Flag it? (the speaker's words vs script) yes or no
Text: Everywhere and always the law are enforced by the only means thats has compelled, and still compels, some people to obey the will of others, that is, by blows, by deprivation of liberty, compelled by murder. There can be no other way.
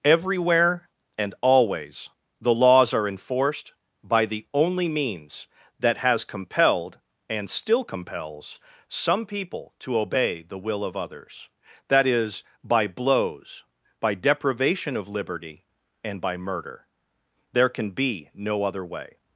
yes